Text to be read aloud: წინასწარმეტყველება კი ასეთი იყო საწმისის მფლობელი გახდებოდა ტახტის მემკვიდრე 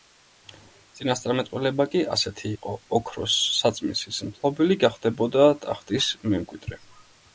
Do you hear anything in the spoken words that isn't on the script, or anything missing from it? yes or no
yes